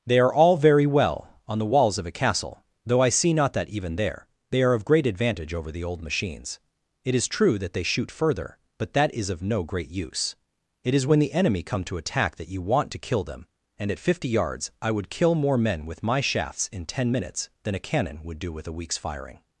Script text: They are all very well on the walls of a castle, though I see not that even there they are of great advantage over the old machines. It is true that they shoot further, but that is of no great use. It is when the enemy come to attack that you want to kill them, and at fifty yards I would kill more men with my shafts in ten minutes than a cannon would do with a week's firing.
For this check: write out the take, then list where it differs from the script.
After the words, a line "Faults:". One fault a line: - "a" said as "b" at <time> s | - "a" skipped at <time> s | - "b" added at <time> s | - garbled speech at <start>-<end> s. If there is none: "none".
They are all very well on the walls of a castle, though I see not that even there they are of great advantage over the old machines. It is true that they shoot further, but that is of no great use. It is when the enemy come to attack that you want to kill them, and at fifty yards I would kill more men with my shafts in ten minutes than a cannon would do with a week's firing.
Faults:
none